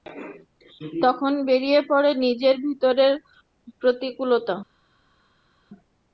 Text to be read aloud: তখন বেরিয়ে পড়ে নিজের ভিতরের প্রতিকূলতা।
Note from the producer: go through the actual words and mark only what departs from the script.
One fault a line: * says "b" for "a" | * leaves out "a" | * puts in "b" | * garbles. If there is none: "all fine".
all fine